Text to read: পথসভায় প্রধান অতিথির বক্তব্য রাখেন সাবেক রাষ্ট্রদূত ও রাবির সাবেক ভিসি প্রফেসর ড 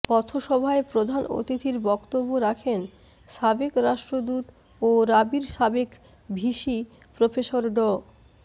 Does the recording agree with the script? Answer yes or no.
yes